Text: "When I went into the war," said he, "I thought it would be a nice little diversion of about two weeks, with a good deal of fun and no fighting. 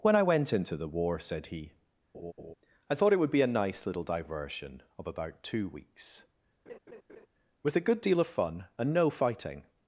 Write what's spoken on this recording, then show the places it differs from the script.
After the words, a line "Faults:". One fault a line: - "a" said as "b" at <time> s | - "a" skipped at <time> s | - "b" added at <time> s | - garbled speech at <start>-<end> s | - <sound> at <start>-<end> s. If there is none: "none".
"When I went into the war," said he, "I thought it would be a nice little diversion of about two weeks, with a good deal of fun and no fighting.
Faults:
- laugh at 2.1-2.5 s
- laugh at 6.7-7.3 s